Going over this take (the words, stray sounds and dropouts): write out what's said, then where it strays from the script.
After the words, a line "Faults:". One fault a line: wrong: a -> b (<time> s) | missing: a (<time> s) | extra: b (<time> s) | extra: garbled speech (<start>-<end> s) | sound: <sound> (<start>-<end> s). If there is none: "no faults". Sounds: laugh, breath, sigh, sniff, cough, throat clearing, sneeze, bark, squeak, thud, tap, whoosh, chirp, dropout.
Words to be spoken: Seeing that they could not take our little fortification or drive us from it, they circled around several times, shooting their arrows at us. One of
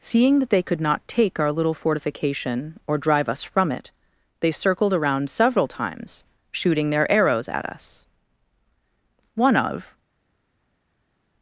Seeing that they could not take our little fortification or drive us from it, they circled around several times, shooting their arrows at us. One of
Faults:
no faults